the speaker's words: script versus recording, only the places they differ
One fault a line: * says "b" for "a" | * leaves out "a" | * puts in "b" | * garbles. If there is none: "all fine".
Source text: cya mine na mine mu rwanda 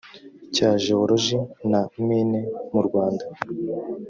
* says "jewoloji" for "mine"